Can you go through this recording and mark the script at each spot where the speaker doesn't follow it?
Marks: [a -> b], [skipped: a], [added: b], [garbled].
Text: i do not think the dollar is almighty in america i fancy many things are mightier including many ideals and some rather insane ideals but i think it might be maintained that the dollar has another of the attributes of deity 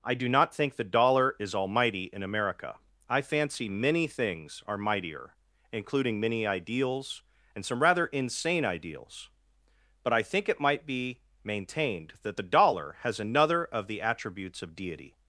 i do not think the dollar is almighty in america i fancy many things are mightier including many ideals and some rather insane ideals but i think it might be maintained that the dollar has another of the attributes of deity